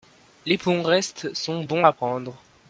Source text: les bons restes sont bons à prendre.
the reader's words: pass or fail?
pass